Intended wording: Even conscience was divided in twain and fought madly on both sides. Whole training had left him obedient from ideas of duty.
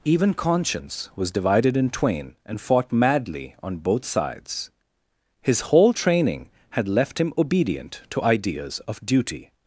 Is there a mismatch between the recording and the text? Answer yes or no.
yes